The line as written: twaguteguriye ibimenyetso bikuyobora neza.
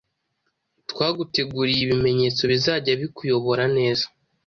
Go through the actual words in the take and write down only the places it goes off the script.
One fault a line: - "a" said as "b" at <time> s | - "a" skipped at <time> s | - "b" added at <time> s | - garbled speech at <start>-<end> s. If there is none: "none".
- "bizajya" added at 2.5 s